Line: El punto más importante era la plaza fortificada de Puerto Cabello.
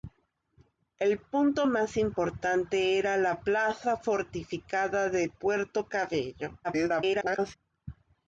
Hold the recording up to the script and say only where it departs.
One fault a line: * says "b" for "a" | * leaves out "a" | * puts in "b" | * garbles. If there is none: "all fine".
* garbles